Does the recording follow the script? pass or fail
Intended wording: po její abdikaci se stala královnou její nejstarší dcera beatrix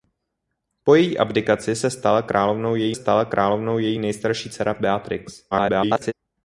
fail